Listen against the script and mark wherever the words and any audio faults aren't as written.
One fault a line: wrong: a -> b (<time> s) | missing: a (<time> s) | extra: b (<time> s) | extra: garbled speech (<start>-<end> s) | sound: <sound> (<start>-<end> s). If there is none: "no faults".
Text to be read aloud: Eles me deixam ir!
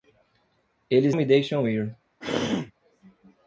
sound: throat clearing (2.2-2.7 s)